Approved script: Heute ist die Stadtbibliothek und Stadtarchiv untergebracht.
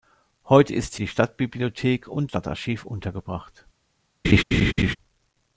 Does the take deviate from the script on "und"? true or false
false